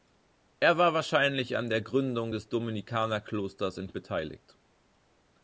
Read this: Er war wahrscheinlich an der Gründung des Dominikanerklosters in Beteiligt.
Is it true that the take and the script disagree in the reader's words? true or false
false